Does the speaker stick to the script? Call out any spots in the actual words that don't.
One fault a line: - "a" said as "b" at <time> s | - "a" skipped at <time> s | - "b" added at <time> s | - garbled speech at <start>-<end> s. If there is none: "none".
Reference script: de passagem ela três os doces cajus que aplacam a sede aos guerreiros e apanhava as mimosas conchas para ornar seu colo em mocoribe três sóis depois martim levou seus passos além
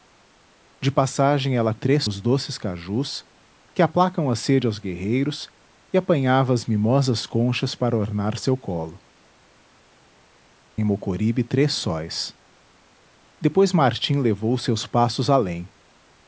none